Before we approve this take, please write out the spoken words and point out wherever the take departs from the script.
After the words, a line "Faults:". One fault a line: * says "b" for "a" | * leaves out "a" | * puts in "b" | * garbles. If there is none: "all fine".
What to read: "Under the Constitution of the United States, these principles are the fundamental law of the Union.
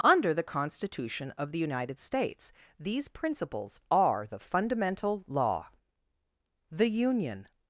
"Under the Constitution of the United States, these principles are the fundamental law the Union.
Faults:
* leaves out "of"